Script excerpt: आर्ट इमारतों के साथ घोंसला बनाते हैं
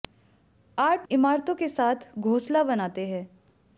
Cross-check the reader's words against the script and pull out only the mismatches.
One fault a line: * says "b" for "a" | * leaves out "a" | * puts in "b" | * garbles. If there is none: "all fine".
all fine